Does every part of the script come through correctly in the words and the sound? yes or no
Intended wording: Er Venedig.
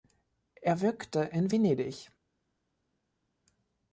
no